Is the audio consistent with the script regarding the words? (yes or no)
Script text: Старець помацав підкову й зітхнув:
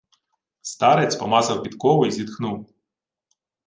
yes